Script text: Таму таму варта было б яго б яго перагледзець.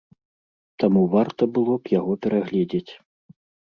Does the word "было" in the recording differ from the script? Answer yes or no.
no